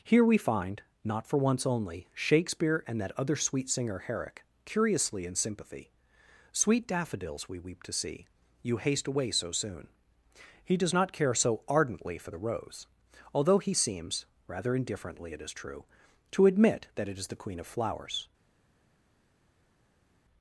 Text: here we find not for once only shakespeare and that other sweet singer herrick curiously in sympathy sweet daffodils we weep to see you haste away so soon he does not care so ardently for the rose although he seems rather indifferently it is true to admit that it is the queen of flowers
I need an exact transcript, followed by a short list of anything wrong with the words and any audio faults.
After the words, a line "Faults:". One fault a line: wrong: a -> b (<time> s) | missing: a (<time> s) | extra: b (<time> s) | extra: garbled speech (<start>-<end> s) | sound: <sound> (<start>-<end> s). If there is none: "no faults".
here we find not for once only shakespeare and that other sweet singer herrick curiously in sympathy sweet daffodils we weep to see you haste away so soon he does not care so ardently for the rose although he seems rather indifferently it is true to admit that it is the queen of flowers
Faults:
no faults